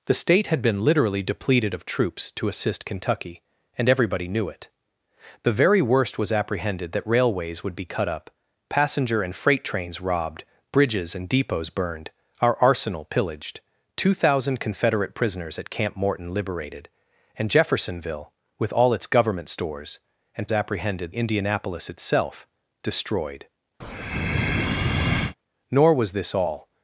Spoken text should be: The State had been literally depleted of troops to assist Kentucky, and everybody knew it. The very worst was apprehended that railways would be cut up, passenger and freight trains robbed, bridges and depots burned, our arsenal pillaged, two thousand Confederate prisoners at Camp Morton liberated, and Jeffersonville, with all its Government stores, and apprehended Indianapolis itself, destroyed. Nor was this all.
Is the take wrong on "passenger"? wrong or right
right